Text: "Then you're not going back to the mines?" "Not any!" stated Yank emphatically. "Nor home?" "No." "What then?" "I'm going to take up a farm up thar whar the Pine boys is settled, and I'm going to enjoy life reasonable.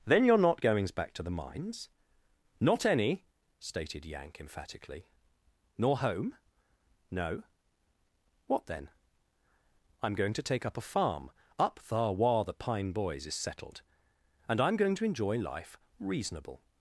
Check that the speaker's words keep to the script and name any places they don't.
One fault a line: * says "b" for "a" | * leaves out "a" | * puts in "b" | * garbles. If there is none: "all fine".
* says "goings" for "going"